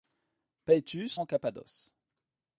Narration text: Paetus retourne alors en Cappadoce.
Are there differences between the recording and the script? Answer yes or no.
yes